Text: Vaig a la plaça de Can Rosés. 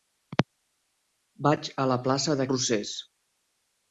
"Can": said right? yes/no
no